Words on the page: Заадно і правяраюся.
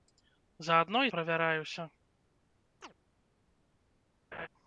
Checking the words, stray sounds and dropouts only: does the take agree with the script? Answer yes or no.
no